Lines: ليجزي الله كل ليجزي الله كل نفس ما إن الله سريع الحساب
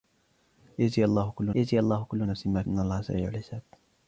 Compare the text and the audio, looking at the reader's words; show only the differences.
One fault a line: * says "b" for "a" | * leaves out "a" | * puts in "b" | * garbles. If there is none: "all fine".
all fine